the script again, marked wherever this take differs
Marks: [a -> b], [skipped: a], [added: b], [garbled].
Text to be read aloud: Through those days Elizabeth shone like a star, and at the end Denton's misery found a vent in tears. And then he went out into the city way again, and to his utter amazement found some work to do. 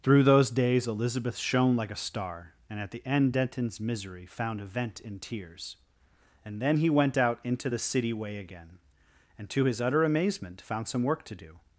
Through those days Elizabeth shone like a star, and at the end Denton's misery found a vent in tears. And then he went out into the city way again, and to his utter amazement found some work to do.